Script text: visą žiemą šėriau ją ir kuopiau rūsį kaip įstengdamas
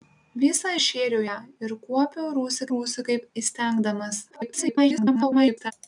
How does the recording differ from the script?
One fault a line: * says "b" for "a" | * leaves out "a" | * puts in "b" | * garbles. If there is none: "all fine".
* leaves out "žiemą"
* puts in "rūsį"
* garbles